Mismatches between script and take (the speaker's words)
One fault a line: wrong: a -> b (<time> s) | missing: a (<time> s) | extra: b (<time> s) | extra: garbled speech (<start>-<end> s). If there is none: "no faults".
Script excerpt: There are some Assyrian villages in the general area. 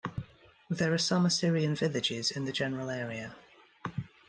no faults